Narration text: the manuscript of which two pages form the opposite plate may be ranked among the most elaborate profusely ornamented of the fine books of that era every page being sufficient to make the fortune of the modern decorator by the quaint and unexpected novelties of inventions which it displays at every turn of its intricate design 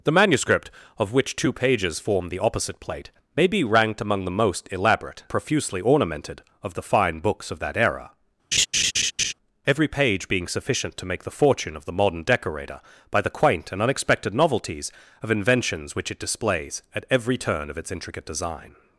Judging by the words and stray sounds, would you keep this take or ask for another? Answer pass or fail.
fail